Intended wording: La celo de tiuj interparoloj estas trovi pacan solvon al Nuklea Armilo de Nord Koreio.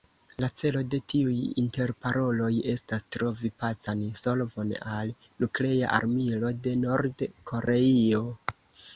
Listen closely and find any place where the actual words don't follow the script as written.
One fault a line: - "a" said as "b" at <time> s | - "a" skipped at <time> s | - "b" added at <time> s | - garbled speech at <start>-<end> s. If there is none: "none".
none